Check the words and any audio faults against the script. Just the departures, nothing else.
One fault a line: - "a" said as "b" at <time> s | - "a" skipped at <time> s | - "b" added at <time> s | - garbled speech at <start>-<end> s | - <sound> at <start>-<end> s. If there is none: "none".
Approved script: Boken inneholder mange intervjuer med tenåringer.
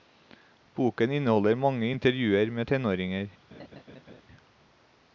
- laugh at 3.5-4.2 s